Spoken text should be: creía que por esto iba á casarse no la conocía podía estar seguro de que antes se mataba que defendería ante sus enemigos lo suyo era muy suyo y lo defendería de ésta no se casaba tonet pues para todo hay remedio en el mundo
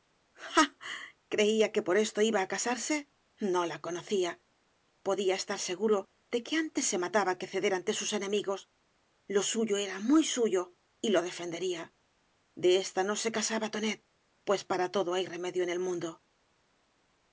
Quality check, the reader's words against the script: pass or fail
fail